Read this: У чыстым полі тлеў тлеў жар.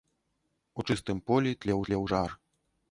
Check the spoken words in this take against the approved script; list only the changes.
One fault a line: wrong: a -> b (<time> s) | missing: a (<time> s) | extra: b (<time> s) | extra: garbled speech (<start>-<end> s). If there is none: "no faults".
no faults